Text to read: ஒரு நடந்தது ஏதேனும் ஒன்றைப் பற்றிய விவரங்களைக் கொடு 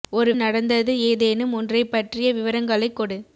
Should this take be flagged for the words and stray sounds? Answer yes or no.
no